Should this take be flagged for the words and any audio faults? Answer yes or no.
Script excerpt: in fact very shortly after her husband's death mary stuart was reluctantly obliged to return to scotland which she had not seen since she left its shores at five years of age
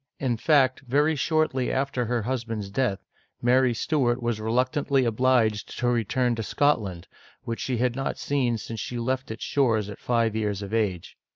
no